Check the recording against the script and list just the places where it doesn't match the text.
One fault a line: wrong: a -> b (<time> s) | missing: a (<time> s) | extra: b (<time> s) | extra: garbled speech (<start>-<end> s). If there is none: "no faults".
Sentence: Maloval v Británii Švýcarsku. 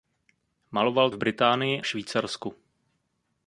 no faults